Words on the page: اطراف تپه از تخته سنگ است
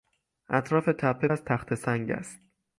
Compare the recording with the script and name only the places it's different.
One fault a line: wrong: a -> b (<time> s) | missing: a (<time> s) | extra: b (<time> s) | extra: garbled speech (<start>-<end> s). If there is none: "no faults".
no faults